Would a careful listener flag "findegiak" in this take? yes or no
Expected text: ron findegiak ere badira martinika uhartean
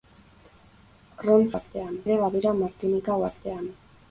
yes